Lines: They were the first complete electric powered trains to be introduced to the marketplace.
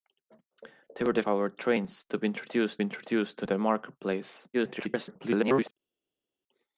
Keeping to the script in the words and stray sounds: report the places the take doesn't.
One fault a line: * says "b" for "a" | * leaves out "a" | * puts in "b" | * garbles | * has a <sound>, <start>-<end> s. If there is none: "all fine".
* leaves out "first complete electric"
* puts in "introduced"
* garbles